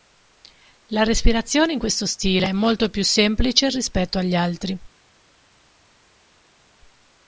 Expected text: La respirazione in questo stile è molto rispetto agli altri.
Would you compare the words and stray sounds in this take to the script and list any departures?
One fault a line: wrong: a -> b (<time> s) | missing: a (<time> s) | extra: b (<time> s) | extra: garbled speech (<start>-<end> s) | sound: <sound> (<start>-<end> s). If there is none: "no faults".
extra: più semplice (2.9 s)